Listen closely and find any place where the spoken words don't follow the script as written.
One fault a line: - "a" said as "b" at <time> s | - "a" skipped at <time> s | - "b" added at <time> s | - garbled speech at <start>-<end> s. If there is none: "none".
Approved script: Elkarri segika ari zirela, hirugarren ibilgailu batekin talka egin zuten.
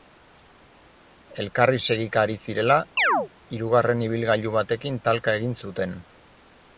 none